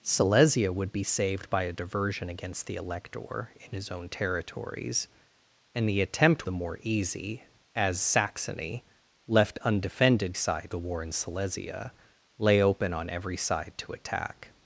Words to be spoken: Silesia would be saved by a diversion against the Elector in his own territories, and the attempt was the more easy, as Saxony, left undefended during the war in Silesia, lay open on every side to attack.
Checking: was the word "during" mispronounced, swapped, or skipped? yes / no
yes